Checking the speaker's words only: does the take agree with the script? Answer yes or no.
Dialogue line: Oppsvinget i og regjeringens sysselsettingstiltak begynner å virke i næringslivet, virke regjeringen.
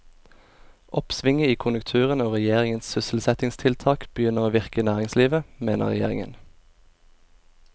no